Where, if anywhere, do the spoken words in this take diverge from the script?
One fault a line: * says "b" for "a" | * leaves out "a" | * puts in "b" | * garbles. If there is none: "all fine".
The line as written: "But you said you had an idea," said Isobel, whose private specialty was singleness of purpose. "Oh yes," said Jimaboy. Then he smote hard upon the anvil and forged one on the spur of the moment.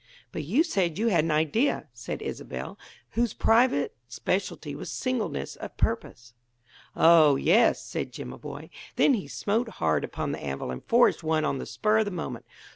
all fine